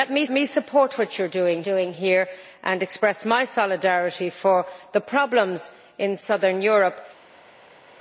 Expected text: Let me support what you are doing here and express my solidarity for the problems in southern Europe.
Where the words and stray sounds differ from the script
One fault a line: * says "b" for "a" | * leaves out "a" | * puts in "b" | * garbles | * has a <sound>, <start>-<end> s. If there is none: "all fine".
* puts in "me"
* puts in "doing"